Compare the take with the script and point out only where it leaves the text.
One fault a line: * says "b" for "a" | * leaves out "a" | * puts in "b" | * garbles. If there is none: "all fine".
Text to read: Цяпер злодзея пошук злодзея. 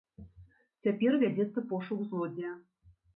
* says "вядзецца" for "злодзея"